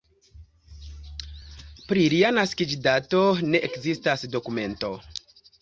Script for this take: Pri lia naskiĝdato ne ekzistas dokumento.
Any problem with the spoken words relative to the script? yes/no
no